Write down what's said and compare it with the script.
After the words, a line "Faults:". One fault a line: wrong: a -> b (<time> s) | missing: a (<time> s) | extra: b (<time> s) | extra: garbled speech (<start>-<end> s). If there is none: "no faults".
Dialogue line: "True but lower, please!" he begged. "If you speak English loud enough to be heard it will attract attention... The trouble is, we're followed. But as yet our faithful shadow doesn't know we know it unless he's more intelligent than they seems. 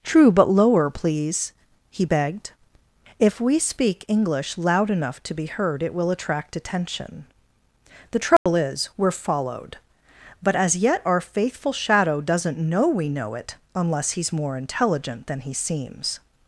"True but lower, please!" he begged. "If we speak English loud enough to be heard it will attract attention... The trouble is, we're followed. But as yet our faithful shadow doesn't know we know it unless he's more intelligent than he seems.
Faults:
wrong: you -> we (3.4 s)
wrong: they -> he (15.4 s)